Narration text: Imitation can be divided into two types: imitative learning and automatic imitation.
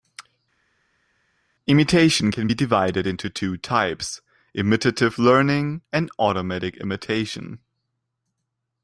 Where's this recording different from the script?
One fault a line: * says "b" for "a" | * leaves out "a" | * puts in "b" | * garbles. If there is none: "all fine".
all fine